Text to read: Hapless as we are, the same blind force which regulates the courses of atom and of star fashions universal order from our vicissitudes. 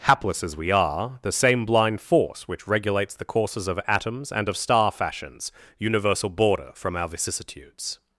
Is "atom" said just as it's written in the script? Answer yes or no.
no